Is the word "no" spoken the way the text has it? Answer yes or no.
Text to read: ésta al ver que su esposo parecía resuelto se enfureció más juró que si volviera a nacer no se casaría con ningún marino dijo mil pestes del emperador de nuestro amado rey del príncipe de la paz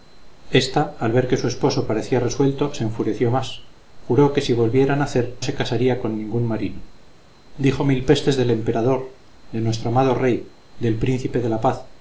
no